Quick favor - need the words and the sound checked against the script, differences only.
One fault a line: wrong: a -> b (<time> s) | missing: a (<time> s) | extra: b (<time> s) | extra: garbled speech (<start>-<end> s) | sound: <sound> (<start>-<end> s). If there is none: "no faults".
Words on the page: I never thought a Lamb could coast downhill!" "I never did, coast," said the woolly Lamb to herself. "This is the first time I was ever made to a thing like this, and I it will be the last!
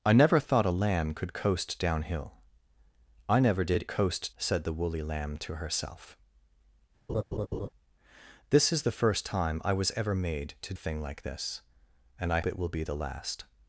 sound: laugh (7.1-7.7 s)